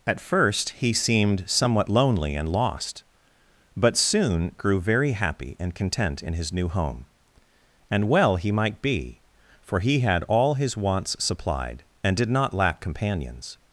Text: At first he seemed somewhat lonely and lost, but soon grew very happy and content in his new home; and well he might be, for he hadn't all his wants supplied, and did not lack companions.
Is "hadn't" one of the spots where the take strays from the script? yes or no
yes